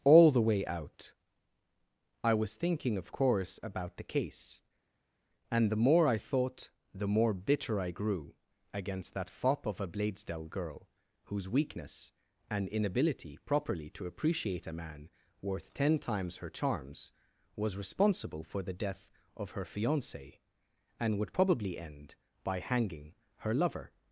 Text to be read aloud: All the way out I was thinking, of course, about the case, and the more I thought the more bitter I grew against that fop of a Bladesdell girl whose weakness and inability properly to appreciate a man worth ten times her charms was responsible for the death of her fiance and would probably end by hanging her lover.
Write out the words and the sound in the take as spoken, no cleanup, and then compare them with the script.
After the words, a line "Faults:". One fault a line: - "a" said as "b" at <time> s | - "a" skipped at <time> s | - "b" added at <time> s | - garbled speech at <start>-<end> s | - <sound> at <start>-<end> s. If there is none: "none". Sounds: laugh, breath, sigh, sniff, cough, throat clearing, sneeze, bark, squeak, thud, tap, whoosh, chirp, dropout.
All the way out I was thinking, of course, about the case, and the more I thought the more bitter I grew against that fop of a Bladesdell girl whose weakness and inability properly to appreciate a man worth ten times her charms was responsible for the death of her fiance and would probably end by hanging her lover.
Faults:
none